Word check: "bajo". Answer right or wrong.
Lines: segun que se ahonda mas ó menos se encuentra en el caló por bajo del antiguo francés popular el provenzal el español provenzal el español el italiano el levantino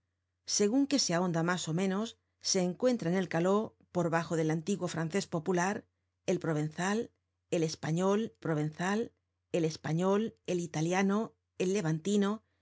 right